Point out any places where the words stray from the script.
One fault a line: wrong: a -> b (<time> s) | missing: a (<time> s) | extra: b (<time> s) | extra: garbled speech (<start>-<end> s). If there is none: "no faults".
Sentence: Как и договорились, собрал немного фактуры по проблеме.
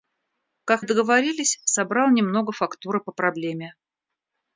no faults